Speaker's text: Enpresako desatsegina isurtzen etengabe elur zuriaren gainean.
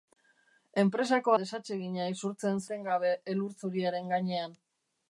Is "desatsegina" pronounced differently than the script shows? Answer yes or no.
no